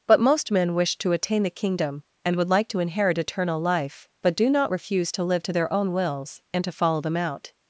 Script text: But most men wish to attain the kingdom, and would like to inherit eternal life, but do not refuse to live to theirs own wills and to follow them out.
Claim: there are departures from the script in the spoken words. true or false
true